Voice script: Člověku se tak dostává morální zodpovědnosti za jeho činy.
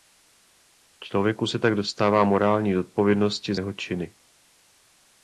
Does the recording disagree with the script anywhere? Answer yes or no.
yes